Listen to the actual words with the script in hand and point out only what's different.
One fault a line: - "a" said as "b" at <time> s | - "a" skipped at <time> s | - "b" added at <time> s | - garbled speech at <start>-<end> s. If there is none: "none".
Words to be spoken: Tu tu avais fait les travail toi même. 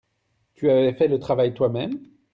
- "tu" skipped at 0.7 s
- "les" said as "le" at 1.1 s